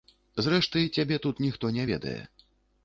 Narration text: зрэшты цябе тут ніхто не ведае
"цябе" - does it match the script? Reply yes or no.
yes